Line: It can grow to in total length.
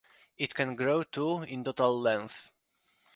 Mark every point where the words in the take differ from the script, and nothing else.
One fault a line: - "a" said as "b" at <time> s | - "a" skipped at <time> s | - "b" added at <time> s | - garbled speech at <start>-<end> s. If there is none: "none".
none